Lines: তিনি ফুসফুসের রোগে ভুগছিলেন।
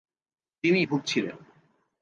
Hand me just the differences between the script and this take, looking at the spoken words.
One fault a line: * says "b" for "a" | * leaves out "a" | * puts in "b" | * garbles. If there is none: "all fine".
* leaves out "ফুসফুসের রোগে"